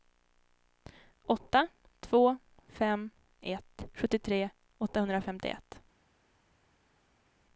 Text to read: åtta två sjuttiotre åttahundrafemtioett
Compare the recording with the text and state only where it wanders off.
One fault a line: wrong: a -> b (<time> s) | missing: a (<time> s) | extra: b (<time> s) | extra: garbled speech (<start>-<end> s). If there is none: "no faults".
extra: fem ett (2.7 s)